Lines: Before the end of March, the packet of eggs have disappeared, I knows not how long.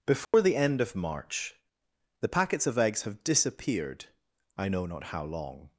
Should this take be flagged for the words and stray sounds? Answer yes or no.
yes